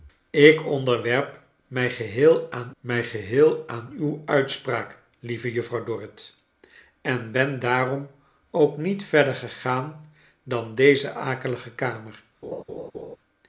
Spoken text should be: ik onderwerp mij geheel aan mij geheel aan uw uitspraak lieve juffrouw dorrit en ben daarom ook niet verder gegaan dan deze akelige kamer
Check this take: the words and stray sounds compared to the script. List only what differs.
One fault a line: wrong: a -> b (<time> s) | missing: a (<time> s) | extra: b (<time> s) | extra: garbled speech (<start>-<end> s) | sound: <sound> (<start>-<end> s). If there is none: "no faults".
sound: laugh (12.4-13.2 s)